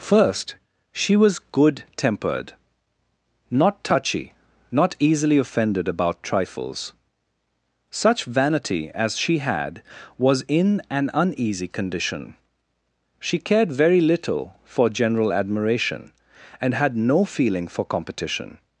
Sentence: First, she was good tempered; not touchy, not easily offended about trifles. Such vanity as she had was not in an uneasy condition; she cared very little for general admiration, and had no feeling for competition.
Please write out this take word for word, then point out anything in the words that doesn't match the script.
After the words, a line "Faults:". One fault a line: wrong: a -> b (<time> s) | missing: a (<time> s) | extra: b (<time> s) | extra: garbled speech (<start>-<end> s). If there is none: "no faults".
First, she was good tempered; not touchy, not easily offended about trifles. Such vanity as she had was in an uneasy condition; she cared very little for general admiration, and had no feeling for competition.
Faults:
missing: not (10.4 s)